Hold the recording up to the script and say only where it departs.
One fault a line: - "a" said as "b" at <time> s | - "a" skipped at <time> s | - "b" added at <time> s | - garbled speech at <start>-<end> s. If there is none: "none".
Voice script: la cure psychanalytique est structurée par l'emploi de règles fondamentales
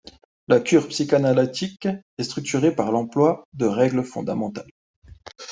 none